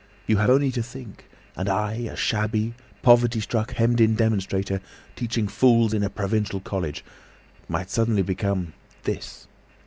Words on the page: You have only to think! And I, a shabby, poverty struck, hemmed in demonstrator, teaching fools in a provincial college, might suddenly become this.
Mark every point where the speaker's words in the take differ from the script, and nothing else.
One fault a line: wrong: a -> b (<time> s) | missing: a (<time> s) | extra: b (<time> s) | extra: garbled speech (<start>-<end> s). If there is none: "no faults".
no faults